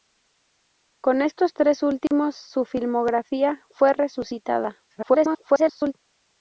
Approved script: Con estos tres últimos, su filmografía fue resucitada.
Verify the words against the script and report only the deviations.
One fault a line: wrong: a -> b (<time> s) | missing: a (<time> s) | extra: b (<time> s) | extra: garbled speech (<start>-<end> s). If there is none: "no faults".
extra: garbled speech (4.9-5.9 s)